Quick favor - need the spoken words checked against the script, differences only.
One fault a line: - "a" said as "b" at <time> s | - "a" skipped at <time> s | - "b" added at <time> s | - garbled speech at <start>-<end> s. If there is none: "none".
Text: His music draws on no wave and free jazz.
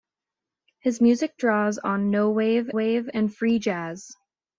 - "wave" added at 2.7 s